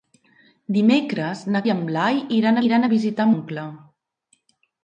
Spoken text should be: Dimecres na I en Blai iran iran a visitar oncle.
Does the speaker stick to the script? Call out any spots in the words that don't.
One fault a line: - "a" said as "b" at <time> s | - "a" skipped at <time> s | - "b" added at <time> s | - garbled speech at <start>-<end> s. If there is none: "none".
none